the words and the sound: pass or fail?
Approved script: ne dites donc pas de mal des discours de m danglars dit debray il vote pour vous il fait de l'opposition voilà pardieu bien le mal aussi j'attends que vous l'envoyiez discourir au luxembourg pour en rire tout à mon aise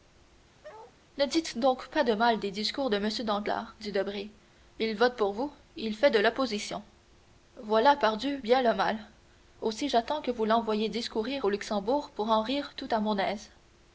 fail